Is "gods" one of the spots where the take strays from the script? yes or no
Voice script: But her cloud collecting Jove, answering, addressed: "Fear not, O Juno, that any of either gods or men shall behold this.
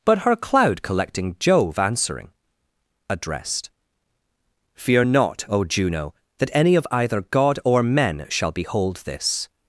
yes